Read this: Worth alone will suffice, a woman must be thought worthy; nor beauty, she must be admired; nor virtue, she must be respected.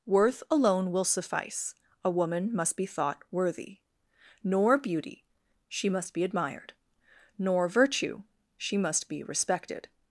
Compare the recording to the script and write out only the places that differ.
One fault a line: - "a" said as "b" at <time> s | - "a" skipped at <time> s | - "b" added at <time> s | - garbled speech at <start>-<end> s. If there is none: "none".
none